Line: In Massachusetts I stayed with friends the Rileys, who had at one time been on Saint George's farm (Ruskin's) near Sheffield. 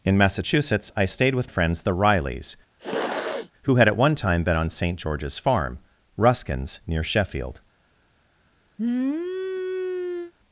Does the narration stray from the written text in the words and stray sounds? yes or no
yes